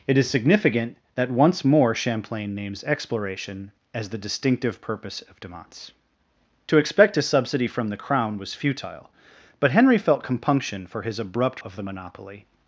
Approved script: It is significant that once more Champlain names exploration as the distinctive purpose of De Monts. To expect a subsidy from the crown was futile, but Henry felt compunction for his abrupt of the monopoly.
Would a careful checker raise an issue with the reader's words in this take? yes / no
no